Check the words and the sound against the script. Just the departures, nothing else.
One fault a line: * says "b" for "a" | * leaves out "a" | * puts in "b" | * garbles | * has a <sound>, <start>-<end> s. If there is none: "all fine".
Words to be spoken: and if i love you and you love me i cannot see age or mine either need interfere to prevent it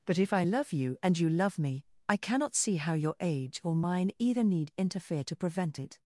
* says "but" for "and"
* puts in "how your"